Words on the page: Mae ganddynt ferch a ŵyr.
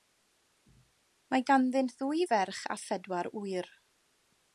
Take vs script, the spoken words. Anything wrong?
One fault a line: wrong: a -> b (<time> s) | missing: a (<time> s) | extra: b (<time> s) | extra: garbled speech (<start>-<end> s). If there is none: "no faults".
extra: ddwy (2.0 s)
extra: phedwar (2.8 s)